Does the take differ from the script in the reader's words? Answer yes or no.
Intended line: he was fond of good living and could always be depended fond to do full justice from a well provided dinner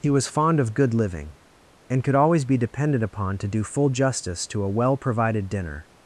yes